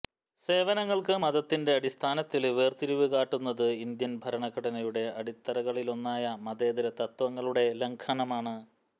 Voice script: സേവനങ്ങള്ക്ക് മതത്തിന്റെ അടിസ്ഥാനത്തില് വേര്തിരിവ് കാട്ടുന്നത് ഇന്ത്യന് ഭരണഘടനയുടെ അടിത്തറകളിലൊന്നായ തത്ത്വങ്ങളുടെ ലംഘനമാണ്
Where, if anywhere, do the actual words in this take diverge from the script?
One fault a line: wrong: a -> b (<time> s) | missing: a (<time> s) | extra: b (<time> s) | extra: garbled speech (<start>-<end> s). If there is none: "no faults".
extra: മതേതര (6.5 s)